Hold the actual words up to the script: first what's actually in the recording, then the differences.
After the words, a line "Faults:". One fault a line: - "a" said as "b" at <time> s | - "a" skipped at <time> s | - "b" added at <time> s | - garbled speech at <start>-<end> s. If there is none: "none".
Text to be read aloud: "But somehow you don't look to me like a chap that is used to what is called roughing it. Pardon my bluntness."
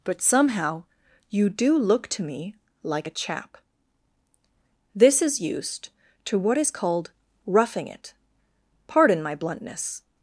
"But somehow you do look to me like a chap this is used to what is called roughing it. Pardon my bluntness."
Faults:
- "don't" said as "do" at 1.5 s
- "that" said as "this" at 5.0 s